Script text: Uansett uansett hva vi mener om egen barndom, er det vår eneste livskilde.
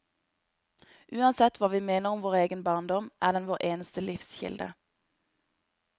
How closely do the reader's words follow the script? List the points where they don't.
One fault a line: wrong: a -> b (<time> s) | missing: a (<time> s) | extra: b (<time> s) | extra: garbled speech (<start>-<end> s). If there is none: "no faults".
missing: uansett (1.6 s)
extra: vår (2.2 s)
wrong: det -> den (3.4 s)